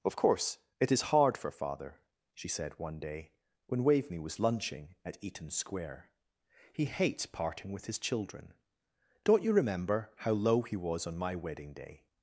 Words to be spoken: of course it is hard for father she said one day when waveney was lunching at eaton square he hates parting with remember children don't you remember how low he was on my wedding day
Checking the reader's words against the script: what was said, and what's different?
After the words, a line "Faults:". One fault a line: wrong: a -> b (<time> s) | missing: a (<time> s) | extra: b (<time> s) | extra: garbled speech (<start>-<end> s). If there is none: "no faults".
of course it is hard for father she said one day when waveney was lunching at eaton square he hates parting with his children don't you remember how low he was on my wedding day
Faults:
wrong: remember -> his (7.8 s)